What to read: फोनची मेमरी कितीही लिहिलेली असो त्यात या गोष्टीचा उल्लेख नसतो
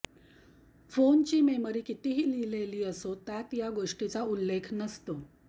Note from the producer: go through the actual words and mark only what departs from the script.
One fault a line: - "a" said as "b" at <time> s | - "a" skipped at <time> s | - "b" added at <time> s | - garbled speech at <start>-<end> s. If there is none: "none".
none